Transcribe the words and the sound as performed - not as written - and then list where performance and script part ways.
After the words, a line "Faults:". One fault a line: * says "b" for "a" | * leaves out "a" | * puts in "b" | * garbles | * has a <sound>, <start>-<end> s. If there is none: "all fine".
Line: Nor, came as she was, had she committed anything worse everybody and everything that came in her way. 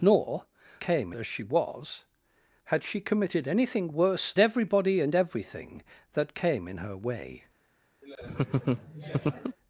Nor, came as she was, had she committed anything worse everybody and everything that came in her way.
Faults:
* has a laugh, 8.0-9.6 s